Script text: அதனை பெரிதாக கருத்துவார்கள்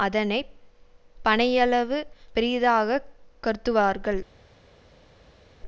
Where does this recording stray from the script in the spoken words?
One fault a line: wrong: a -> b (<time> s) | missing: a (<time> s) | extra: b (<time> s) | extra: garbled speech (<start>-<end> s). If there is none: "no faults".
extra: பனையளவு (1.2 s)